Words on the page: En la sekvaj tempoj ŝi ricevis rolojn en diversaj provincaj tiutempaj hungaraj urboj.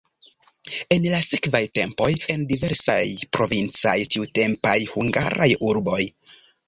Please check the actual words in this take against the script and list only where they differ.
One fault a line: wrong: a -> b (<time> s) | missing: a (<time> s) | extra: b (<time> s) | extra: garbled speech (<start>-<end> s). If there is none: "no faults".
missing: ŝi ricevis rolojn (2.1 s)